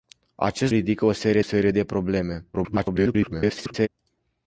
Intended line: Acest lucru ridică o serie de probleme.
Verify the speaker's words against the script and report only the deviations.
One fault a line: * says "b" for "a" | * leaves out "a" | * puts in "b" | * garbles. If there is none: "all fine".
* leaves out "lucru"
* puts in "serie"
* garbles